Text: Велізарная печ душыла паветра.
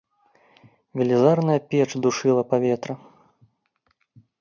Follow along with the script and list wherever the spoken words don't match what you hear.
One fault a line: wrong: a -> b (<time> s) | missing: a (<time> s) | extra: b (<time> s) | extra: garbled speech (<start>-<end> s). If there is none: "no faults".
no faults